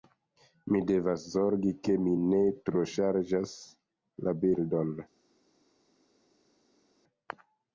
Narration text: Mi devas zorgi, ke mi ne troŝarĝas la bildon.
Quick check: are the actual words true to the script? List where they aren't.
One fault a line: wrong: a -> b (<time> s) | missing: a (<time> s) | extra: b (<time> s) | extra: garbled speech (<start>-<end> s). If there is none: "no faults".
no faults